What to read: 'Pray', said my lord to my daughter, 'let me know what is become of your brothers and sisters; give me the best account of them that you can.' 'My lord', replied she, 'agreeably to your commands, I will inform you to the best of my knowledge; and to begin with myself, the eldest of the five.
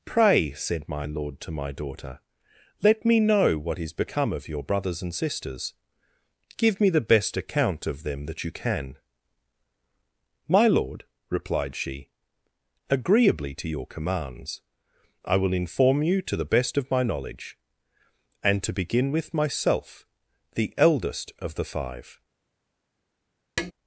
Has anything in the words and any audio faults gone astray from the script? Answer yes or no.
yes